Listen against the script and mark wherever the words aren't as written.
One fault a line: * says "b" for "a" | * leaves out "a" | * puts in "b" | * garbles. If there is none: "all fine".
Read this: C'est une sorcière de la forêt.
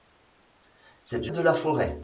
* leaves out "une sorcière"